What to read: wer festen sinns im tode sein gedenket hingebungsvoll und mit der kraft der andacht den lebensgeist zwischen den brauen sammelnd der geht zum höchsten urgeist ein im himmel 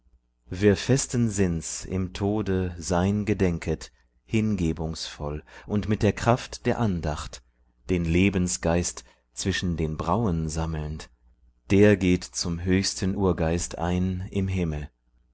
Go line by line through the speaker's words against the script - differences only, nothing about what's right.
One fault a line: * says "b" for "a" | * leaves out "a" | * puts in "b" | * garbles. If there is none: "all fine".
all fine